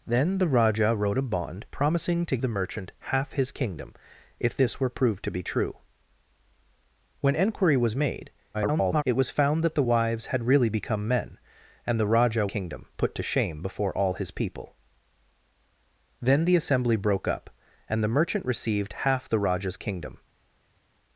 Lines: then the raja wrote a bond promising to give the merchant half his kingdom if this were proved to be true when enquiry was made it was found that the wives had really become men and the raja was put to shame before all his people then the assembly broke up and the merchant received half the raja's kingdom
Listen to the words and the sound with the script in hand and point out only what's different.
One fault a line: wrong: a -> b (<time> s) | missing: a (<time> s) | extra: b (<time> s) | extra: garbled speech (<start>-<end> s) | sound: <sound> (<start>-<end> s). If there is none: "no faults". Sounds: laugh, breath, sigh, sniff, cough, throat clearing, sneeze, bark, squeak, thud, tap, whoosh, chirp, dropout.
missing: give (2.4 s)
extra: garbled speech (8.5-9.0 s)
wrong: was -> kingdom (12.4 s)